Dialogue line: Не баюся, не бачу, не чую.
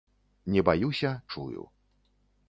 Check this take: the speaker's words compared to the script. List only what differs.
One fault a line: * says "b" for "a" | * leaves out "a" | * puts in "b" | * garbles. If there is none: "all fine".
* leaves out "не бачу не"